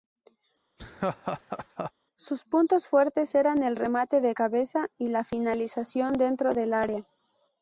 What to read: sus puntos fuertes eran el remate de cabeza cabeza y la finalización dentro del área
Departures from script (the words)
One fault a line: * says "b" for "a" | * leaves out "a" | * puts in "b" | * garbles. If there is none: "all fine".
* leaves out "cabeza"